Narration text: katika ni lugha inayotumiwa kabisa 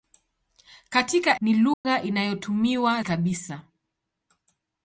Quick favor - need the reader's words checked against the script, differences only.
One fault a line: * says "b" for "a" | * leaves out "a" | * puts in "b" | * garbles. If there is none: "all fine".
all fine